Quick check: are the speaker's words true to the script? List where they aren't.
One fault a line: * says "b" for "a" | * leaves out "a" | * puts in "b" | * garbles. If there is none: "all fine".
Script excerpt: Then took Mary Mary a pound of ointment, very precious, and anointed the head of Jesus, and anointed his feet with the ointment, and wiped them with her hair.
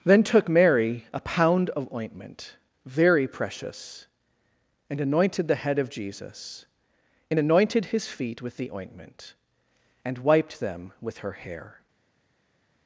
* leaves out "Mary"